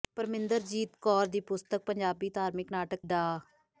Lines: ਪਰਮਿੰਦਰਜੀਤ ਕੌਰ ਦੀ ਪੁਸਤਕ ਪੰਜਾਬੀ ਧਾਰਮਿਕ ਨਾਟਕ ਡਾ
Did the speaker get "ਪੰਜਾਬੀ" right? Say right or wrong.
right